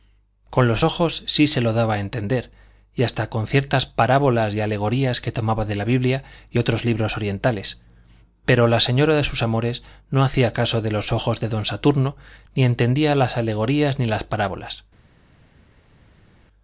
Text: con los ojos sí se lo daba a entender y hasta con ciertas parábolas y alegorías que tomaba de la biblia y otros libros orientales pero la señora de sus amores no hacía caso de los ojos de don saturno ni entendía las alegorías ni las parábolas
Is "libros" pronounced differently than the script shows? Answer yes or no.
no